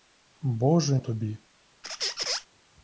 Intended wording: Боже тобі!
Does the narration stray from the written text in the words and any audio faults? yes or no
yes